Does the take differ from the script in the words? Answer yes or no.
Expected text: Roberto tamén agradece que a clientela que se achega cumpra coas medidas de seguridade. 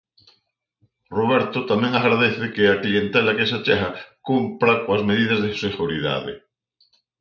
no